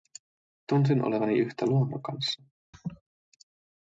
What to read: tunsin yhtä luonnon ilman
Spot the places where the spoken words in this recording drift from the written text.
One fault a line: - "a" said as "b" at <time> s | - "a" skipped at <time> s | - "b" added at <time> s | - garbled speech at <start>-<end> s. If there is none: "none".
- "olevani" added at 1.1 s
- "ilman" said as "kanssa" at 2.0 s